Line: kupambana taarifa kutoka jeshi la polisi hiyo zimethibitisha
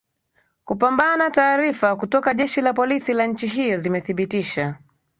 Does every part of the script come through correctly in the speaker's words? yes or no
no